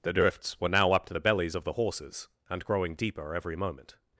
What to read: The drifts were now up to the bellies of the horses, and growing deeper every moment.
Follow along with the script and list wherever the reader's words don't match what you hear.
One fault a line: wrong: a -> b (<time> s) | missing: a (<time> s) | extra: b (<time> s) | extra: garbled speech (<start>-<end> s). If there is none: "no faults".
no faults